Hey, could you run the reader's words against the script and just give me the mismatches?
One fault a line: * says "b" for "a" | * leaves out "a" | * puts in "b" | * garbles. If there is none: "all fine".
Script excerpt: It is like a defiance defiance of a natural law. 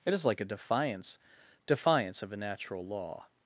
all fine